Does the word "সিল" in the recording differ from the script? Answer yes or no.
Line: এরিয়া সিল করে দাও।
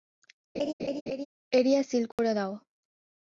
no